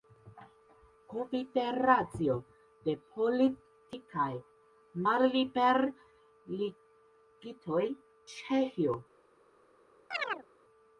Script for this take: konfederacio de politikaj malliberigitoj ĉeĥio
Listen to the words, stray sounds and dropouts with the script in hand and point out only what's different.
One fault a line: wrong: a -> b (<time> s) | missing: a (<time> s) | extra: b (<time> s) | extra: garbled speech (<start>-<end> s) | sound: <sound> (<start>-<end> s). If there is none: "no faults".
sound: chirp (10.1-10.5 s)